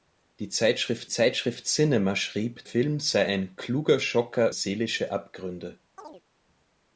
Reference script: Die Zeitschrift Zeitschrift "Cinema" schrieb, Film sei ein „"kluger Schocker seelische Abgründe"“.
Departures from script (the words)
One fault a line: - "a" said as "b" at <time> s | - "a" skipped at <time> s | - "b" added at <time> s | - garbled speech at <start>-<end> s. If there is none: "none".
none